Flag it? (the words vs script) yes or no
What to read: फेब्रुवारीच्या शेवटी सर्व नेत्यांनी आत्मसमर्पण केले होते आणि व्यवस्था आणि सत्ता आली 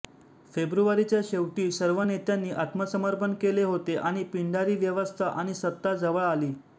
yes